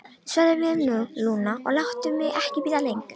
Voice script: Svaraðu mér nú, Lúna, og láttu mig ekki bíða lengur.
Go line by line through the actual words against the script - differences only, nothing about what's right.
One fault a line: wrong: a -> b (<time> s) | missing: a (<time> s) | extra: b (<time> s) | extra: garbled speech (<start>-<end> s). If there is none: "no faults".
no faults